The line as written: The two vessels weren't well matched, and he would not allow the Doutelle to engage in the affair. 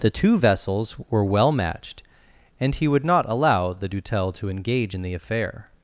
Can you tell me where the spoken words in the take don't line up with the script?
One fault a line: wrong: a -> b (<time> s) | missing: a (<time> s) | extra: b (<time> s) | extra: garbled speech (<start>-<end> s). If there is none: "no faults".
wrong: weren't -> were (1.1 s)